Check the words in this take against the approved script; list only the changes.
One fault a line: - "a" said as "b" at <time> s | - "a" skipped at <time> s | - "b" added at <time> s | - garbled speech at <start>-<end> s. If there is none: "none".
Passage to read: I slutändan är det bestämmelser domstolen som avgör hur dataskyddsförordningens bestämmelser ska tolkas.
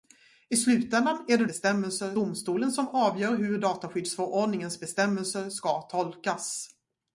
none